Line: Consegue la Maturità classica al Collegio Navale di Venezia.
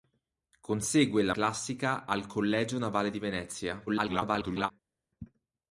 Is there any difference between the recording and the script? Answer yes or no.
yes